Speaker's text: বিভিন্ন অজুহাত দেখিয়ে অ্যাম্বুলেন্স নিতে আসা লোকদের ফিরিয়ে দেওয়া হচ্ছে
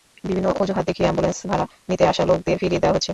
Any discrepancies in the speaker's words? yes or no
yes